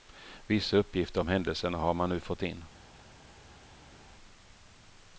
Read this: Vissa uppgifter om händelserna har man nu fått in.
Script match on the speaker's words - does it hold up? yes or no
yes